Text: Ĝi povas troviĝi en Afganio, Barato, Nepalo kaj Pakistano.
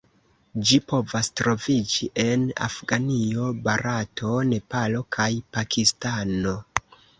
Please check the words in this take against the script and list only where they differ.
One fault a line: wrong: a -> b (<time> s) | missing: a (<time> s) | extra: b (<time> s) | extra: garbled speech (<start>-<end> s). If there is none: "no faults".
no faults